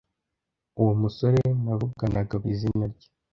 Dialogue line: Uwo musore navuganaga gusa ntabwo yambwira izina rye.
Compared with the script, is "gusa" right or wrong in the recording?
wrong